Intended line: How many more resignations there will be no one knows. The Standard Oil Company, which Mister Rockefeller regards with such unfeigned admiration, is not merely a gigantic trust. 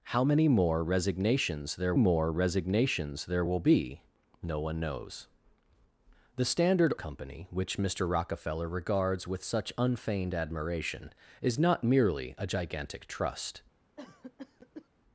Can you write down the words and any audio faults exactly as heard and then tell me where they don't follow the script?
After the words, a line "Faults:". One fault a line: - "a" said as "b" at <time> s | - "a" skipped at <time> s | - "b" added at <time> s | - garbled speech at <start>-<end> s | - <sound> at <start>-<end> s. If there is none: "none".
How many more resignations there more resignations there will be no one knows. The Standard Company, which Mister Rockefeller regards with such unfeigned admiration, is not merely a gigantic trust.
Faults:
- "more resignations there" added at 1.9 s
- "Oil" skipped at 6.9 s
- cough at 14.0-14.9 s